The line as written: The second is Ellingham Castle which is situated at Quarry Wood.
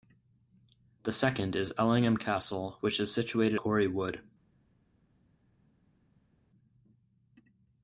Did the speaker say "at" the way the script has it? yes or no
no